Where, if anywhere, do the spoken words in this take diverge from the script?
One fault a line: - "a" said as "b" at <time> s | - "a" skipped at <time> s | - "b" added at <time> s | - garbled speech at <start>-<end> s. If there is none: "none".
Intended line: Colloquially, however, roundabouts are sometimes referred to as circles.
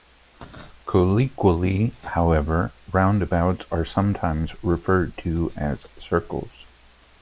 none